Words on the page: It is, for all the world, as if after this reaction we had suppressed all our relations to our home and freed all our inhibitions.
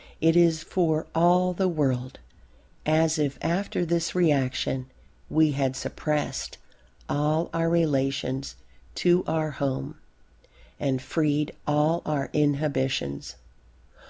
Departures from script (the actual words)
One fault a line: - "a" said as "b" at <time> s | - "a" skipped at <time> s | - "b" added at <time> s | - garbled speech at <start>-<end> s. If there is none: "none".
none